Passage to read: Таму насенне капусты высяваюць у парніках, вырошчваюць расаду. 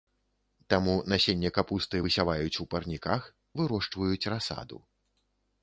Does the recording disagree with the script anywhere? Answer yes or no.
no